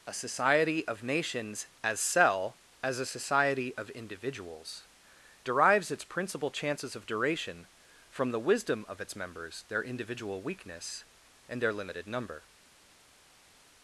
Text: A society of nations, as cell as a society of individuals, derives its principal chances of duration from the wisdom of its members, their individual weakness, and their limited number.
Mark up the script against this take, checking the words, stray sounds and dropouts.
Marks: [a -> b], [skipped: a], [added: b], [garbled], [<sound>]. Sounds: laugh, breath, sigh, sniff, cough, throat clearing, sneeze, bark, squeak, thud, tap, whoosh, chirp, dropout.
A society of nations, as cell as a society of individuals, derives its principal chances of duration from the wisdom of its members, their individual weakness, and their limited number.